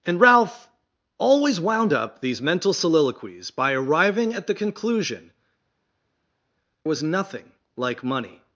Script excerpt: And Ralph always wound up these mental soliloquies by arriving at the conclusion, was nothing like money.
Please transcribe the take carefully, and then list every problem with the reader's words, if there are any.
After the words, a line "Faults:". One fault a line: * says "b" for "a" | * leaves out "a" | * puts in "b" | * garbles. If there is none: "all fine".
And Ralph always wound up these mental soliloquies by arriving at the conclusion, was nothing like money.
Faults:
all fine